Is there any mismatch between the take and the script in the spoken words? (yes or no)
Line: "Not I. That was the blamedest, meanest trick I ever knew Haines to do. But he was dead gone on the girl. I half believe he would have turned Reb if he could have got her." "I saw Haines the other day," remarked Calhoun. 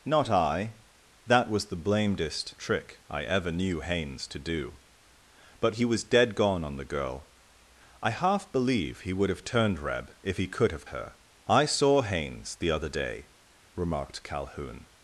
yes